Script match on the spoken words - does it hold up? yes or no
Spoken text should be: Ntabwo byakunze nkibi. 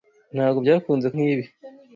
yes